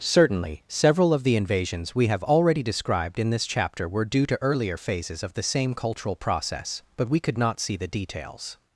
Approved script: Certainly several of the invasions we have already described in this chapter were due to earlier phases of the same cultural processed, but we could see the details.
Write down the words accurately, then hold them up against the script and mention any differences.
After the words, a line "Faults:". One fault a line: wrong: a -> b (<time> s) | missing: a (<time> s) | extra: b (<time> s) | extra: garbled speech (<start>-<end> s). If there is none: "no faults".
Certainly several of the invasions we have already described in this chapter were due to earlier phases of the same cultural process, but we could not see the details.
Faults:
wrong: processed -> process (6.2 s)
extra: not (7.4 s)